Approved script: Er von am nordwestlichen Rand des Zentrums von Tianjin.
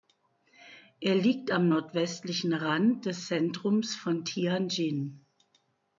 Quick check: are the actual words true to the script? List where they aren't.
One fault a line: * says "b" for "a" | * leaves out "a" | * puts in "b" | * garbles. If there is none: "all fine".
* says "liegt" for "von"